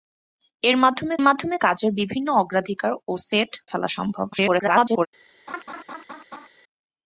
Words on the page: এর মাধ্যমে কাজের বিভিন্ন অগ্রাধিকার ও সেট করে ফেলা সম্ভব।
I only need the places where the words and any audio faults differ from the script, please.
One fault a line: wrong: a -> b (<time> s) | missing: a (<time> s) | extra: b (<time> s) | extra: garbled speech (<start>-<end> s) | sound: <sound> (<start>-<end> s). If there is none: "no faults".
extra: মাধ্যমে (1.2 s)
missing: করে (3.5 s)
extra: garbled speech (4.3-5.1 s)
sound: laugh (5.5-6.5 s)